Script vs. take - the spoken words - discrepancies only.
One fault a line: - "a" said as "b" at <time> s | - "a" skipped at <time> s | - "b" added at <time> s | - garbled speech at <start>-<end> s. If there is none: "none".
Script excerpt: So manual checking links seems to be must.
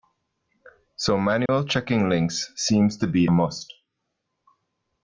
none